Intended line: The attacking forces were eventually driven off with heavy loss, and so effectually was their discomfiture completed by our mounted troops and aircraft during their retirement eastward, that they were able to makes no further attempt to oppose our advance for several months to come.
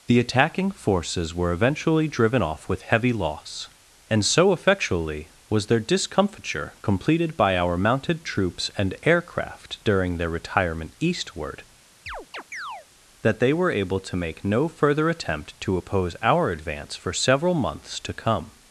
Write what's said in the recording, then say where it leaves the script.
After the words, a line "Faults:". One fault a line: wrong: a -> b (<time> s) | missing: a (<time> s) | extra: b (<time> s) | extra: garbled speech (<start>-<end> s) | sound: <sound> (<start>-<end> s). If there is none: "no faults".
The attacking forces were eventually driven off with heavy loss, and so effectually was their discomfiture completed by our mounted troops and aircraft during their retirement eastward, that they were able to make no further attempt to oppose our advance for several months to come.
Faults:
sound: chirp (12.1-12.9 s)
wrong: makes -> make (14.2 s)